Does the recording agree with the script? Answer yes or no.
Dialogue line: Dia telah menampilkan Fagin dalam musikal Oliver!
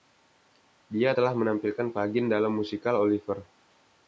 yes